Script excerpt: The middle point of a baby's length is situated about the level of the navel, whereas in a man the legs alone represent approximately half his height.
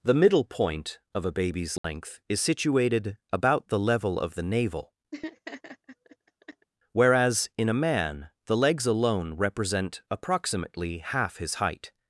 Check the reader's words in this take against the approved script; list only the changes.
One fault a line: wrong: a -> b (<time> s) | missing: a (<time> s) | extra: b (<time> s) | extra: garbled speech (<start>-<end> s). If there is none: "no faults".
no faults